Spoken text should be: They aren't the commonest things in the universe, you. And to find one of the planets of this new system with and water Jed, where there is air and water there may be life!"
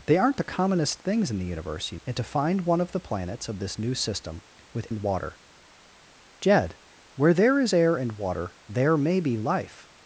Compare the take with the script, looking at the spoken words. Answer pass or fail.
pass